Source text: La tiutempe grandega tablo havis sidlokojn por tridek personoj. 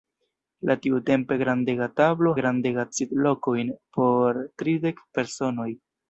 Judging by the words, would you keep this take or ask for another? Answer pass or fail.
fail